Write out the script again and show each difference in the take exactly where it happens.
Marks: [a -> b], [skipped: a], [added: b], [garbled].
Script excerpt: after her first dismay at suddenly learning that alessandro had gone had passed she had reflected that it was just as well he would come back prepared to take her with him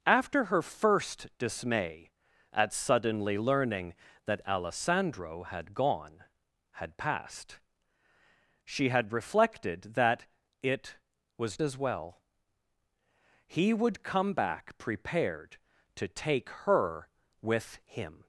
after her first dismay at suddenly learning that alessandro had gone had passed she had reflected that it was [skipped: just] as well he would come back prepared to take her with him